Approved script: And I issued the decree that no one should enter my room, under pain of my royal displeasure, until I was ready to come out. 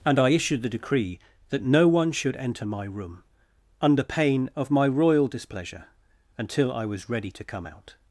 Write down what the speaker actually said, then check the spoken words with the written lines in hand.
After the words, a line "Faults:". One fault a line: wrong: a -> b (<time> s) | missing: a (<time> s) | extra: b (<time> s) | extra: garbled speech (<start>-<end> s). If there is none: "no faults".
And I issued the decree that no one should enter my room, under pain of my royal displeasure, until I was ready to come out.
Faults:
no faults